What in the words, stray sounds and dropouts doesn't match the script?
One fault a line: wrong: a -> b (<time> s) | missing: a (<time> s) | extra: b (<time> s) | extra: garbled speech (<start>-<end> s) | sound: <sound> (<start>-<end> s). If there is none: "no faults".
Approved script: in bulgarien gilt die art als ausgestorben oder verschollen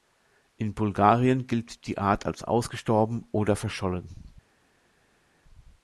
no faults